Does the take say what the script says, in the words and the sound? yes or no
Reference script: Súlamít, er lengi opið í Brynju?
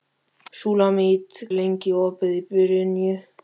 yes